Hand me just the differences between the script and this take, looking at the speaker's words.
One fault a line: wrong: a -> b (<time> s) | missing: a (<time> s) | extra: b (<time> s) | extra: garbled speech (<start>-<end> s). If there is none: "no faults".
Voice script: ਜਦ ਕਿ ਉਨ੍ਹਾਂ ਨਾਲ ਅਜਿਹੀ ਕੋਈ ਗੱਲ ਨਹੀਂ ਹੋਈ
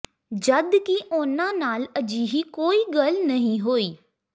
no faults